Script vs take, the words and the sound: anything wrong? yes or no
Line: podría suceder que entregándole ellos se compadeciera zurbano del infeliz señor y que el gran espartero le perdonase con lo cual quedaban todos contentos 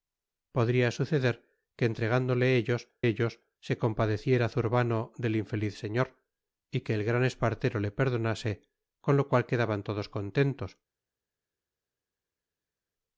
yes